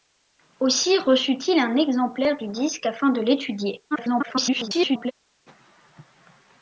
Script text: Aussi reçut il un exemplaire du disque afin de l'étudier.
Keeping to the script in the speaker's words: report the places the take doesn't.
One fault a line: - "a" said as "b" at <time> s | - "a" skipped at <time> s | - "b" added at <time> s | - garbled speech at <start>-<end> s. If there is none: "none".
- garbled speech at 3.9-5.1 s